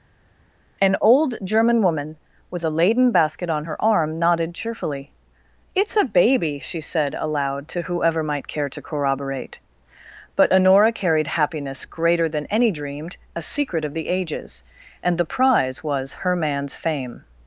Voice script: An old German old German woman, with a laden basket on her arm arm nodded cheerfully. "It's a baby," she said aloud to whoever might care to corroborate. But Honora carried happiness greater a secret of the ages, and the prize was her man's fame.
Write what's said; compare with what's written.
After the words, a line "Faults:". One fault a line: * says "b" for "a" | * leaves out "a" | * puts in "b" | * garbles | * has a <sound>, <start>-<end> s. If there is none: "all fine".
An old German woman, with a laden basket on her arm nodded cheerfully. "It's a baby," she said aloud to whoever might care to corroborate. But Honora carried happiness greater than any dreamed, a secret of the ages, and the prize was her man's fame.
Faults:
* leaves out "old German"
* leaves out "arm"
* puts in "than any dreamed"